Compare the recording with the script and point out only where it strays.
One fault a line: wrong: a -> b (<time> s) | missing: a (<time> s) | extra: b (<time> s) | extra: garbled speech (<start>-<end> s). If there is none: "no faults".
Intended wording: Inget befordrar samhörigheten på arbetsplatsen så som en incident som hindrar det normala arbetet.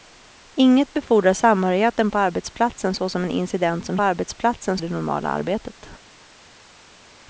wrong: hindrar -> arbetsplatsen (4.0 s)